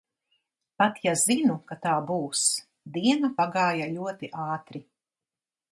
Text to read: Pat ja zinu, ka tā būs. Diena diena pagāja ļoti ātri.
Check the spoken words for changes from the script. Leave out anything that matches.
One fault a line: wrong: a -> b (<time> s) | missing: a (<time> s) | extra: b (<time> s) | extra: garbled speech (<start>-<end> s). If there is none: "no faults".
missing: diena (3.3 s)